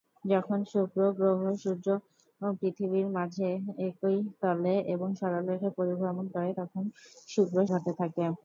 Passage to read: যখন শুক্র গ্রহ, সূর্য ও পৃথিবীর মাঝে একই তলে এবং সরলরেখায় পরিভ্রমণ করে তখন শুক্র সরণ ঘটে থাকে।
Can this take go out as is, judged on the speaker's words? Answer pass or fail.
fail